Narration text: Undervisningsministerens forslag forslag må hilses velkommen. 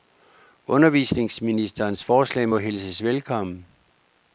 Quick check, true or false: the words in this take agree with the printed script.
false